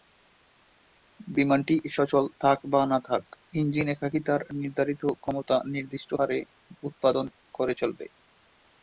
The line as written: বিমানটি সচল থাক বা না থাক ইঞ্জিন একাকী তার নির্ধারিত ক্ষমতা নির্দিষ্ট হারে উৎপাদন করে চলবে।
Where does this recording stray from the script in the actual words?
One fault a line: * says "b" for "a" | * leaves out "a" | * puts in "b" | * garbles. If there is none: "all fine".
all fine